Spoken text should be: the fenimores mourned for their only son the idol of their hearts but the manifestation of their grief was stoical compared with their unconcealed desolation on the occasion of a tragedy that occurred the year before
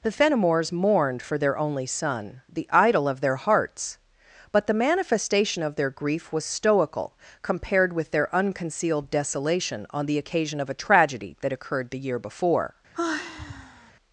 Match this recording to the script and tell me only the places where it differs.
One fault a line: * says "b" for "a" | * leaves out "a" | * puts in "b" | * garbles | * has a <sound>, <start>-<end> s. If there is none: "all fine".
* has a sigh, 12.9-13.9 s